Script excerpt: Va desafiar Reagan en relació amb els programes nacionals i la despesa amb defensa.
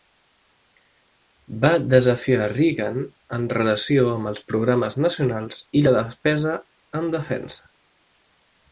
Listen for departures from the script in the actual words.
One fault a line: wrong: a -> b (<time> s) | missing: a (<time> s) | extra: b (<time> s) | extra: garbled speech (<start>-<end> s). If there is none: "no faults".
wrong: amb -> en (7.0 s)